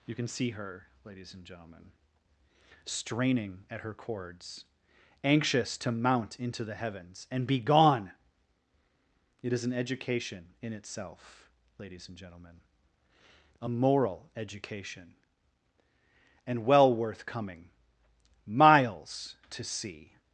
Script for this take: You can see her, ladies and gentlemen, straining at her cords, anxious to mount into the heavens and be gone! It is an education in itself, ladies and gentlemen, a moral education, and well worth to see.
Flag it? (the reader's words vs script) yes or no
yes